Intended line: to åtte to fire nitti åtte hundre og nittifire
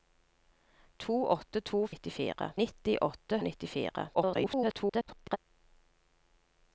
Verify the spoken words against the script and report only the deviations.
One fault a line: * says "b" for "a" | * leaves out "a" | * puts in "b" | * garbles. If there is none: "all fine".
* says "nittifire" for "fire"
* leaves out "hundre"
* garbles